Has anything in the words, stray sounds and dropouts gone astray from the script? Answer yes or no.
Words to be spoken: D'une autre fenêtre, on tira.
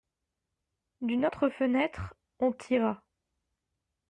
no